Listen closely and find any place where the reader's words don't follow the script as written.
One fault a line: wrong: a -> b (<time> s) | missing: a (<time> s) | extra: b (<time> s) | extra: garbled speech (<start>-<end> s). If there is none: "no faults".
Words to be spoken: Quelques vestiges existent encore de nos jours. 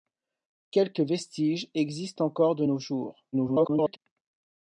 extra: garbled speech (3.3-4.0 s)